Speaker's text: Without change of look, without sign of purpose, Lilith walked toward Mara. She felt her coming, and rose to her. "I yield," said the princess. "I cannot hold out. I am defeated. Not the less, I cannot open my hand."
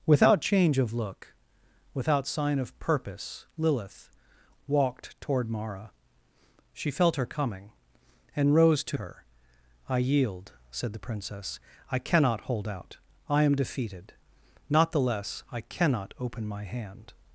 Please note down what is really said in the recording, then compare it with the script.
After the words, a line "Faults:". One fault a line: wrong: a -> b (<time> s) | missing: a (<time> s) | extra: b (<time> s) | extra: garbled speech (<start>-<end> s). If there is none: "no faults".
Without change of look, without sign of purpose, Lilith walked toward Mara. She felt her coming, and rose to her. "I yield," said the princess. "I cannot hold out. I am defeated. Not the less, I cannot open my hand."
Faults:
no faults